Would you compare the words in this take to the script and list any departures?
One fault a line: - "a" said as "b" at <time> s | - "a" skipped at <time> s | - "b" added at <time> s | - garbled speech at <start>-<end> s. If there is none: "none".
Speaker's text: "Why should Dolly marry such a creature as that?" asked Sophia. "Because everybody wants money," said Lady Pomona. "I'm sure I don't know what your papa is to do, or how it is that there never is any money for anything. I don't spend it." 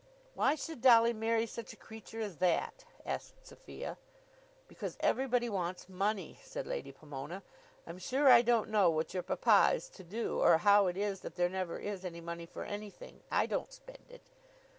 none